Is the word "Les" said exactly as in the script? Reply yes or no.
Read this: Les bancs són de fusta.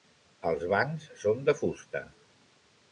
no